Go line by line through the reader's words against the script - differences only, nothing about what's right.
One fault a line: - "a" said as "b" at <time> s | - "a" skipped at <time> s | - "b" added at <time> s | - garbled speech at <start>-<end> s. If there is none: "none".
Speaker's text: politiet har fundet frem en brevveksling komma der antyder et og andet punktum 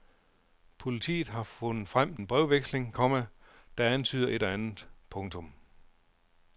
none